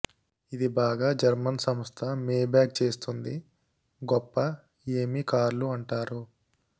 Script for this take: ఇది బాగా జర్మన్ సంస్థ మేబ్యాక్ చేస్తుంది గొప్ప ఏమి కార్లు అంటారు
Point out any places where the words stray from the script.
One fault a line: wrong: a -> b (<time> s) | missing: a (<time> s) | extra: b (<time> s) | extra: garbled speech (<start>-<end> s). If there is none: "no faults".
no faults